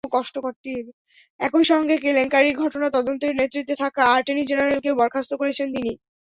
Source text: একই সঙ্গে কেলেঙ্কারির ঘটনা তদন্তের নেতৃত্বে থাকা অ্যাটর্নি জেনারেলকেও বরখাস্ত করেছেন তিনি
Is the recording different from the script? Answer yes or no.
no